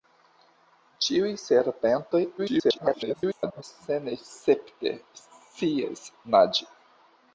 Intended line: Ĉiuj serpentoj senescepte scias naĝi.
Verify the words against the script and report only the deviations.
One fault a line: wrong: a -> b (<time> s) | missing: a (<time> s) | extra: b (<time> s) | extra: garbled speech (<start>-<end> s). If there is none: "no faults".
extra: garbled speech (2.4-3.6 s)